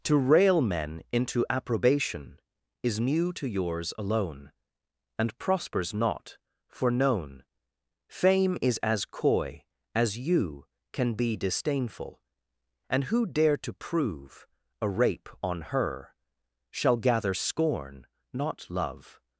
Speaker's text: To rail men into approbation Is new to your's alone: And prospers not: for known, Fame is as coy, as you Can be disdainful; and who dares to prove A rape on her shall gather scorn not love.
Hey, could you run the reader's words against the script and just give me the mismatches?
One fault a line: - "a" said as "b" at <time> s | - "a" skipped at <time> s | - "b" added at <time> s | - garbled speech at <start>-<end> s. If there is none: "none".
- "dares" said as "dare" at 13.3 s